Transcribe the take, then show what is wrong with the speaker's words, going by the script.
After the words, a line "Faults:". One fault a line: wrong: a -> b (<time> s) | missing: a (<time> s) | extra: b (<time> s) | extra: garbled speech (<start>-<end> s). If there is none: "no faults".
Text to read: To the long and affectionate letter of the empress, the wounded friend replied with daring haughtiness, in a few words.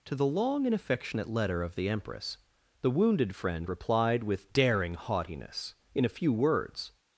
To the long and affectionate letter of the empress, the wounded friend replied with daring haughtiness, in a few words.
Faults:
no faults